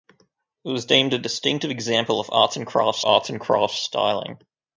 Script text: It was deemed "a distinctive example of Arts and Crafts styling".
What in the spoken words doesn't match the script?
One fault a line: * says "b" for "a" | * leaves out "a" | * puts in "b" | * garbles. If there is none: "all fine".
* puts in "Arts and Crafts"